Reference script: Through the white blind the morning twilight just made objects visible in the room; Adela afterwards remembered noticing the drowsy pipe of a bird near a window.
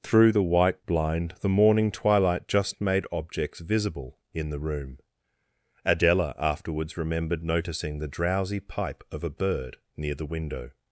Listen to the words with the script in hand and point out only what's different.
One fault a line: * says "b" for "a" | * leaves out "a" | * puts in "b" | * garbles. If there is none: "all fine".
* says "the" for "a"